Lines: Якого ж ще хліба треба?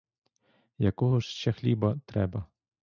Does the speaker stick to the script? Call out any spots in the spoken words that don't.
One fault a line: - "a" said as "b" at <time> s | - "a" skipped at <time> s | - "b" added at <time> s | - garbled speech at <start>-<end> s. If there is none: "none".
none